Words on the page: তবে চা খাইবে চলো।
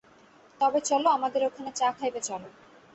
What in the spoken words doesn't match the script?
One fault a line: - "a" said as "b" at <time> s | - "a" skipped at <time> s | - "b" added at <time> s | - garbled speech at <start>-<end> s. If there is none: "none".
- "চলো আমাদের ওখানে" added at 0.8 s